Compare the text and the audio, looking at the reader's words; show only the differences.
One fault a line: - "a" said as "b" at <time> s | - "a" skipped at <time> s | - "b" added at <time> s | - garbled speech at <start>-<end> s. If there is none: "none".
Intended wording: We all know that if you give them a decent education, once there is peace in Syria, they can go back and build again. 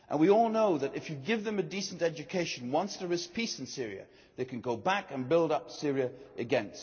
- "up Syria" added at 5.5 s